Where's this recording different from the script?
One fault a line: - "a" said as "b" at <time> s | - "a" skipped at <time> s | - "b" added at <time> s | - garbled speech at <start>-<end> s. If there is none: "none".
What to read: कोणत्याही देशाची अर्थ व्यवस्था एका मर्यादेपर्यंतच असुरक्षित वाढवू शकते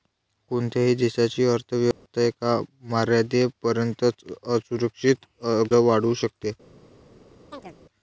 none